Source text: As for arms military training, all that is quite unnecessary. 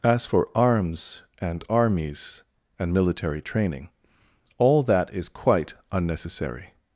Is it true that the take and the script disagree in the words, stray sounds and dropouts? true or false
true